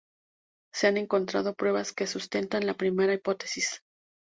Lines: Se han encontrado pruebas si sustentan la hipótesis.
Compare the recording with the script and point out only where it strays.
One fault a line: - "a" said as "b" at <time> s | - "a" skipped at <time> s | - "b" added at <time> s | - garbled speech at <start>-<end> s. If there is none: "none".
- "si" said as "que" at 1.9 s
- "primera" added at 2.7 s